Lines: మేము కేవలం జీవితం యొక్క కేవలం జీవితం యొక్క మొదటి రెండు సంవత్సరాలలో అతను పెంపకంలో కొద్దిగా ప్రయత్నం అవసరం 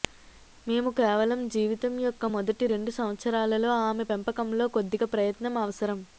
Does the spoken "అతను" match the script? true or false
false